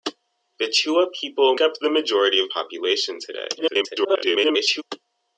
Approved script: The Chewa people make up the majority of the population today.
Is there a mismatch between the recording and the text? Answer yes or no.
yes